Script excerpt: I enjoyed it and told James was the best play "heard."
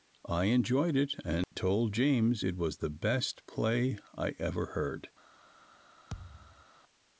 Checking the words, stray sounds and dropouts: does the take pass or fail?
fail